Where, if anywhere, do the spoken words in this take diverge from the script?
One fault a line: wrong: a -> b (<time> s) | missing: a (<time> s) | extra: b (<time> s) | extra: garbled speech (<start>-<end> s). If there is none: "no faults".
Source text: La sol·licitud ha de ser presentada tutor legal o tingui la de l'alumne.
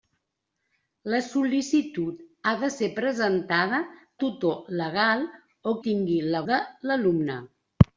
no faults